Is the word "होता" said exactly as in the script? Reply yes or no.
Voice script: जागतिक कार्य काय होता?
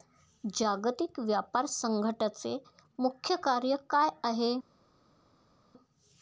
no